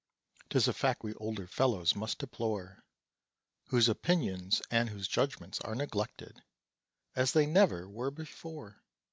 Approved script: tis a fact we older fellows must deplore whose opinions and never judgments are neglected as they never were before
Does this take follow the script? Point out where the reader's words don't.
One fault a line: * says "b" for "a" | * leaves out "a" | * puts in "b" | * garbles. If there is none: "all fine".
* says "whose" for "never"